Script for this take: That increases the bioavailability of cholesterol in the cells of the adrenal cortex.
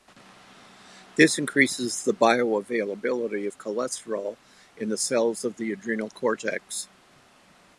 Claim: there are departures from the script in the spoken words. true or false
true